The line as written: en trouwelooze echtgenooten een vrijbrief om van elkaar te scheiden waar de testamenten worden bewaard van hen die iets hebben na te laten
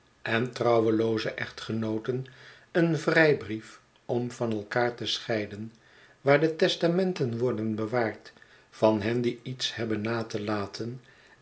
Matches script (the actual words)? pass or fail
pass